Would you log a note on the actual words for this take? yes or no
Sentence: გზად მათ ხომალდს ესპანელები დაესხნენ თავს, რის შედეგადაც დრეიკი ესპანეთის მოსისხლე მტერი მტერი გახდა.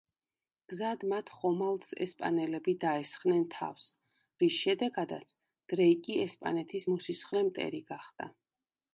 yes